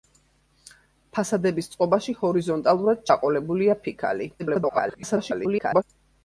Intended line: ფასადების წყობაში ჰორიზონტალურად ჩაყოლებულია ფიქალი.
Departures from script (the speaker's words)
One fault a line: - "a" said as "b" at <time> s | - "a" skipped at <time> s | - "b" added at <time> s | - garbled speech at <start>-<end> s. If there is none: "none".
- garbled speech at 4.4-5.8 s